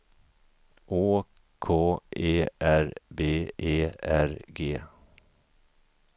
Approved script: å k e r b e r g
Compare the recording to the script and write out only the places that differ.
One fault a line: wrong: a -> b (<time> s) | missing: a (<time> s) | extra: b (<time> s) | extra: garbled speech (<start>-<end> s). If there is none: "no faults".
no faults